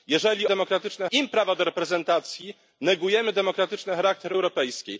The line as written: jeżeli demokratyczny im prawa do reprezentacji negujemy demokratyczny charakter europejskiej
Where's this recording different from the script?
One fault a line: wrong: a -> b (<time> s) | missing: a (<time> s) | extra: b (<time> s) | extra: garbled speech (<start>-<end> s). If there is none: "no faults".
no faults